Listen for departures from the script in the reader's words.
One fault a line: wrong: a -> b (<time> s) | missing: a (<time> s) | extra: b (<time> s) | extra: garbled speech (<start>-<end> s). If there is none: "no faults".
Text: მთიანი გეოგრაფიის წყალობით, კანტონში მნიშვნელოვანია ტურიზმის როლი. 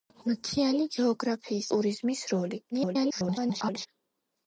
missing: წყალობით კანტონში მნიშვნელოვანია (1.7 s)
extra: garbled speech (2.7-3.9 s)